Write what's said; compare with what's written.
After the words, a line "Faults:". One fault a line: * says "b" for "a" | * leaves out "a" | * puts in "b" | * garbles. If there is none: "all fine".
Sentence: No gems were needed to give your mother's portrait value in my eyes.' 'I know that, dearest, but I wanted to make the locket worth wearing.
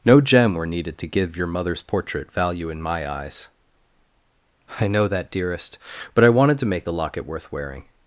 No gem were needed to give your mother's portrait value in my eyes.' 'I know that, dearest, but I wanted to make the locket worth wearing.
Faults:
* says "gem" for "gems"